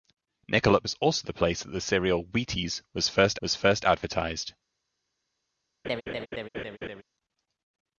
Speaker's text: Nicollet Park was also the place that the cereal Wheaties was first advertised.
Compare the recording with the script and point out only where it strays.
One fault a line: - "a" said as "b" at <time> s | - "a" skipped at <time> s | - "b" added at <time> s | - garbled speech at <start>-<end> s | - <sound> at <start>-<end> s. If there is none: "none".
- "Park" skipped at 0.8 s
- "was first" added at 3.4 s
- laugh at 5.8-7.0 s